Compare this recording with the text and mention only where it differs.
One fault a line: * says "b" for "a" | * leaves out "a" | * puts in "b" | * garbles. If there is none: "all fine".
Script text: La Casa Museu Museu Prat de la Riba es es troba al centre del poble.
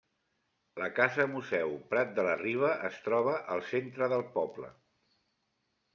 * leaves out "Museu"
* leaves out "es"